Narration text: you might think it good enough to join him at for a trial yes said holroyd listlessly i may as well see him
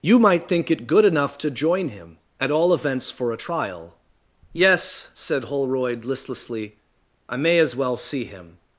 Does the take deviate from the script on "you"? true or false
false